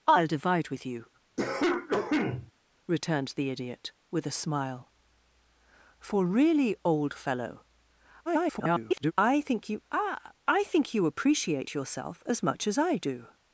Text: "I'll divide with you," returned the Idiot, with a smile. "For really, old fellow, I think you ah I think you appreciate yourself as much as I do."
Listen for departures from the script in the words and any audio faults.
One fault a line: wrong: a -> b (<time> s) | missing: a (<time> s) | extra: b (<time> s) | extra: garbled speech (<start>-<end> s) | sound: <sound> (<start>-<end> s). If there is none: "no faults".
sound: cough (1.4-2.5 s)
extra: garbled speech (8.3-9.1 s)